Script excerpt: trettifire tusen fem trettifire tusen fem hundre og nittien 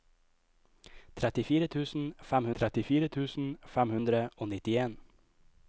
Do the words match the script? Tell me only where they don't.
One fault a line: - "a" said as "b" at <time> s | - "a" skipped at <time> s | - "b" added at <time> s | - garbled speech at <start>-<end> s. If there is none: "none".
none